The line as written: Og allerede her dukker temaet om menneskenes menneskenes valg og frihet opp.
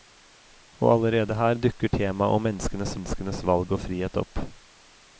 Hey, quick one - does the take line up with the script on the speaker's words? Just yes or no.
yes